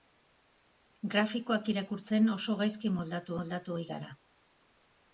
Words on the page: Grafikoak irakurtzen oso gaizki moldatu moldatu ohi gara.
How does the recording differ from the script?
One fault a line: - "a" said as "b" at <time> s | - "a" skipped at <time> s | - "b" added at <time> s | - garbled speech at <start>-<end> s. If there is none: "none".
none